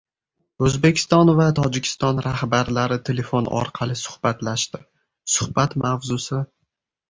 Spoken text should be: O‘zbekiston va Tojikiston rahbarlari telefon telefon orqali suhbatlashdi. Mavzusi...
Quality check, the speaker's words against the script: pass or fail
fail